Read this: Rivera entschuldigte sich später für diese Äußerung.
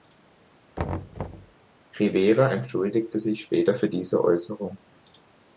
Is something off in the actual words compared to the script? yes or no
no